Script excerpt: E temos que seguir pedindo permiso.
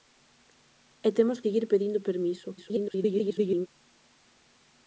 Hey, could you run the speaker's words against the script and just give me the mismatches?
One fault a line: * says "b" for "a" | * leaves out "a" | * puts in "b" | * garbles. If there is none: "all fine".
* leaves out "que"
* garbles